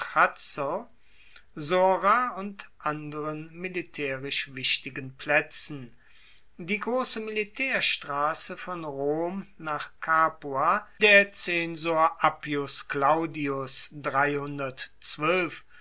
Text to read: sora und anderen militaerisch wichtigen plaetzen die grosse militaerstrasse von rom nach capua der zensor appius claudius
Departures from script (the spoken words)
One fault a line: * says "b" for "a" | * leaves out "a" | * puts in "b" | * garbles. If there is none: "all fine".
all fine